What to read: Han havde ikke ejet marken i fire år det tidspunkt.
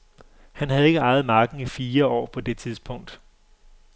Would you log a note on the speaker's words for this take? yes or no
yes